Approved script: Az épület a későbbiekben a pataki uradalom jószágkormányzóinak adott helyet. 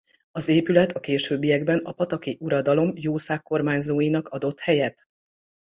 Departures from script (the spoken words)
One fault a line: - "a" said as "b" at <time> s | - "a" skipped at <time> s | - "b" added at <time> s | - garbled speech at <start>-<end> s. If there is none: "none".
none